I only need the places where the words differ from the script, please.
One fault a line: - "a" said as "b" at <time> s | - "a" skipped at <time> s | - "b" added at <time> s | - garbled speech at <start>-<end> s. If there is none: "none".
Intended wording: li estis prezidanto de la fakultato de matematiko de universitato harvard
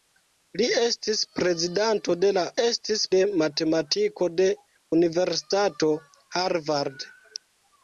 - "fakultato" said as "estis" at 2.6 s